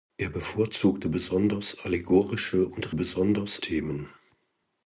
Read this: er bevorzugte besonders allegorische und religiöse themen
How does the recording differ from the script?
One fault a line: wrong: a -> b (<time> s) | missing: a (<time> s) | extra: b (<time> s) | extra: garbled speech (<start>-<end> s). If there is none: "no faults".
wrong: religiöse -> besonders (2.9 s)